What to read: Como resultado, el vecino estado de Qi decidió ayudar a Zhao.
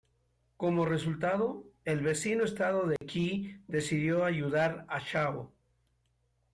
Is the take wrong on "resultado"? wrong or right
right